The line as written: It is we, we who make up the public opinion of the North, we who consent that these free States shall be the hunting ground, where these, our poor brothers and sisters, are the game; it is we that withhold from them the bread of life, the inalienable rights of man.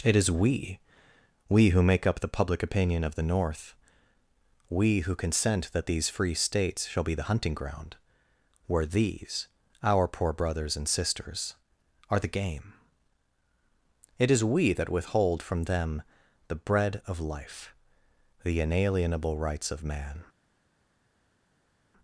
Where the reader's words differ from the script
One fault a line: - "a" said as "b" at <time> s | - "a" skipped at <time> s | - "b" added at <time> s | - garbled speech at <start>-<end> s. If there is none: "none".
none